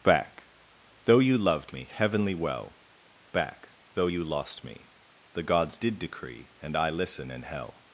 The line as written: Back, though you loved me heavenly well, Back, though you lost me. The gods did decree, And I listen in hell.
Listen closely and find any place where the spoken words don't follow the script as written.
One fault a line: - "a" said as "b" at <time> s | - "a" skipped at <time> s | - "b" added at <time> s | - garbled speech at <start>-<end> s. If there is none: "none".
none